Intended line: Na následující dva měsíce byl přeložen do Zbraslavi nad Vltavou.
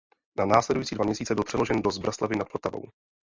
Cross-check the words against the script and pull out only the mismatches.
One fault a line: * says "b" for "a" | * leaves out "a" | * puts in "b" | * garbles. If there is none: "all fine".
all fine